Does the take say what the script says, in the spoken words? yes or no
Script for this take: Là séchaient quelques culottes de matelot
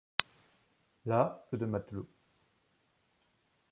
no